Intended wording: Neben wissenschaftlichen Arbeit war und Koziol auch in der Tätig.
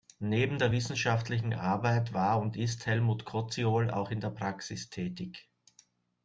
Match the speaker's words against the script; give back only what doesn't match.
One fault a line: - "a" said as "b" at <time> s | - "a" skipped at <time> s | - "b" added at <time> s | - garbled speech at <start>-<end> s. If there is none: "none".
- "der" added at 0.6 s
- "ist Helmut" added at 2.6 s
- "Praxis" added at 4.3 s